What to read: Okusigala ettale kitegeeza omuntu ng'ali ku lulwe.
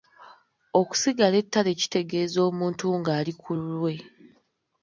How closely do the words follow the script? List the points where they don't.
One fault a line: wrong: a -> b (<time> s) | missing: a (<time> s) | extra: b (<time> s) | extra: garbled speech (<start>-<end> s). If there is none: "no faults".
no faults